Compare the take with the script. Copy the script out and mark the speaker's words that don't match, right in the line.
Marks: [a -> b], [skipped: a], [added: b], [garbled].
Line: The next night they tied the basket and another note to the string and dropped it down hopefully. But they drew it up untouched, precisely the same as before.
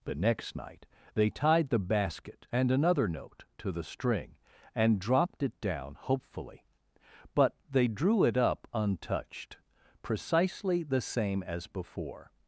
The next night they tied the basket and another note to the string and dropped it down hopefully. But they drew it up untouched, precisely the same as before.